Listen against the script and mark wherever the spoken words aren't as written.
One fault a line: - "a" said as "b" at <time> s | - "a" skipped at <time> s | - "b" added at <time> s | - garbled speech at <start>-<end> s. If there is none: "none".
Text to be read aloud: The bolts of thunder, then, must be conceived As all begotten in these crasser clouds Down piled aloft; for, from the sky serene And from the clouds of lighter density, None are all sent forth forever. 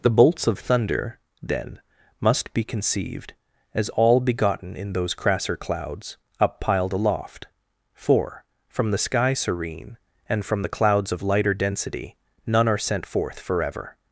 - "these" said as "those" at 4.9 s
- "Down" said as "Up" at 6.4 s
- "all" skipped at 12.8 s